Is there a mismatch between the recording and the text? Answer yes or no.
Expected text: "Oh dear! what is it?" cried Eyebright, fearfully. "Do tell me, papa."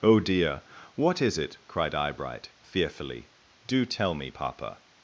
no